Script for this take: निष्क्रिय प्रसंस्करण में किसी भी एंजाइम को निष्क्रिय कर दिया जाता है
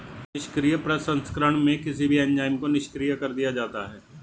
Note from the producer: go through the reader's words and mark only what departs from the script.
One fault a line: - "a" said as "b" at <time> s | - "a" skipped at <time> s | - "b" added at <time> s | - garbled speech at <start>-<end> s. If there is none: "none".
none